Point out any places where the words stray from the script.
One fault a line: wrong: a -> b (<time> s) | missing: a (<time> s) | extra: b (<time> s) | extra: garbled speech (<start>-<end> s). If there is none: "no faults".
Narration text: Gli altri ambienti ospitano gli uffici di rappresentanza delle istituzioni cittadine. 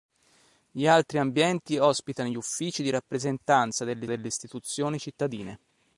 extra: delle (4.1 s)